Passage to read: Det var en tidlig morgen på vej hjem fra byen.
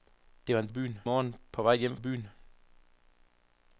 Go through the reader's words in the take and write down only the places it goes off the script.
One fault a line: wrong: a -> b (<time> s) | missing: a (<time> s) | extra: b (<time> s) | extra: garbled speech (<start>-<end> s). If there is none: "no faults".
wrong: tidlig -> byen (0.7 s)
missing: fra (2.0 s)